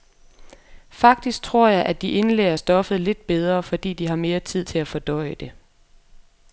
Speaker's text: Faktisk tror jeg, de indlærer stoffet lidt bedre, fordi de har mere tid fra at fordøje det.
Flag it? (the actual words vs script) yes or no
yes